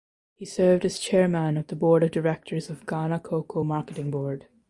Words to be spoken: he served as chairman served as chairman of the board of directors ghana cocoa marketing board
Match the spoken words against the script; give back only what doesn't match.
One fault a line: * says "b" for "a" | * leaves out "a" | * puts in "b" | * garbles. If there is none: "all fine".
* leaves out "served as chairman"
* puts in "of"